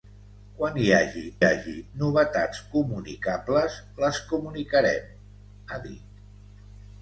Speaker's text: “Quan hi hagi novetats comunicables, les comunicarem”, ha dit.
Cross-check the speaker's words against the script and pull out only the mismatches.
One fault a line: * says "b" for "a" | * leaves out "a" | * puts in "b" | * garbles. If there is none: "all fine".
* puts in "hagi"